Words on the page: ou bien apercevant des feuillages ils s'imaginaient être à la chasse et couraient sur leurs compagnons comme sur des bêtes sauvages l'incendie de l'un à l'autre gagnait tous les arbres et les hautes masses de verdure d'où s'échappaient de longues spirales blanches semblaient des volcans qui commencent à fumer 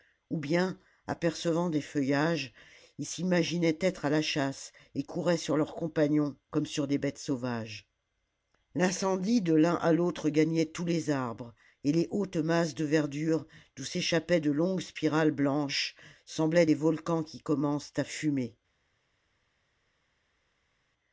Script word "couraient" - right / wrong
right